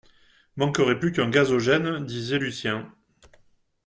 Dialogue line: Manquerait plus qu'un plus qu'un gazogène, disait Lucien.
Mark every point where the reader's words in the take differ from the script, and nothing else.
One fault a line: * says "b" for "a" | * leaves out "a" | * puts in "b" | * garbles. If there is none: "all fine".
* leaves out "plus qu'un"